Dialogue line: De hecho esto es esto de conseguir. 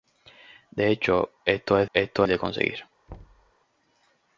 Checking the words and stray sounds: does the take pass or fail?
fail